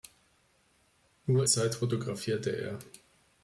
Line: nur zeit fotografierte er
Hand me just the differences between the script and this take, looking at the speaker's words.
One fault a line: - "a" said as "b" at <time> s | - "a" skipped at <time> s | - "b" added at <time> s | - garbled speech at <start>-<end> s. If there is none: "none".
none